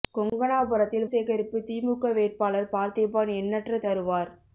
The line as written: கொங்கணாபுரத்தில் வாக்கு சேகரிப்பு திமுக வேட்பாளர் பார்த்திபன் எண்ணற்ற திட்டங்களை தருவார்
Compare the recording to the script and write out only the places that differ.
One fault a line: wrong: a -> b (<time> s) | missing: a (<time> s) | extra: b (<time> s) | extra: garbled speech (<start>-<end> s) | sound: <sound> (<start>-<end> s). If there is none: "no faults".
missing: வாக்கு (1.1 s)
missing: திட்டங்களை (3.8 s)